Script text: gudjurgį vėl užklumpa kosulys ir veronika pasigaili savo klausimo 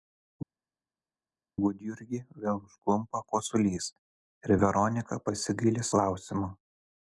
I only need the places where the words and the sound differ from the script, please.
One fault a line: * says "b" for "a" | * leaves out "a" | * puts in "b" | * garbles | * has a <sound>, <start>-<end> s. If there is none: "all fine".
* leaves out "savo"